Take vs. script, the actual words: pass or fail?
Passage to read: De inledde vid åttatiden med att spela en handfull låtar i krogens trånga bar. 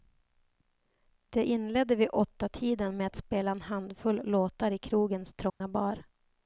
pass